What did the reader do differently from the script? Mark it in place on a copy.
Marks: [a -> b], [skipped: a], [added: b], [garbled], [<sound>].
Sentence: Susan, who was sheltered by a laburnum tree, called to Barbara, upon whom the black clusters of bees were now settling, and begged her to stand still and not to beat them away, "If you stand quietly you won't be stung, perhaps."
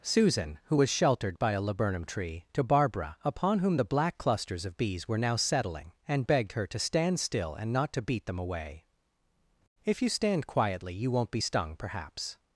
Susan, who was sheltered by a laburnum tree, [skipped: called] to Barbara, upon whom the black clusters of bees were now settling, and begged her to stand still and not to beat them away, "If you stand quietly you won't be stung, perhaps."